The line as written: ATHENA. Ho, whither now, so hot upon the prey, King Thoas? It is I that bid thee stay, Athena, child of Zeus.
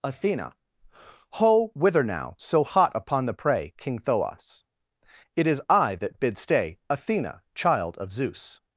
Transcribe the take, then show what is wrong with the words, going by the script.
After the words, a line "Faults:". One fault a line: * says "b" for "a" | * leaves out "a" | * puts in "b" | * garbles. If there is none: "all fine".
ATHENA. Ho, whither now, so hot upon the prey, King Thoas? It is I that bid stay, Athena, child of Zeus.
Faults:
* leaves out "thee"